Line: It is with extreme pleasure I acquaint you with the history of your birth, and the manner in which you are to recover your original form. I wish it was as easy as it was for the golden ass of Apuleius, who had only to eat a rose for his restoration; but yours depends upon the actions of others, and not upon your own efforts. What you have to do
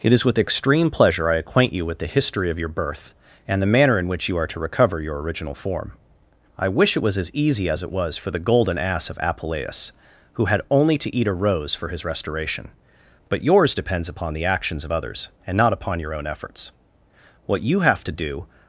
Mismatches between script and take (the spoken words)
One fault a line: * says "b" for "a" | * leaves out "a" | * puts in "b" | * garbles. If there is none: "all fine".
all fine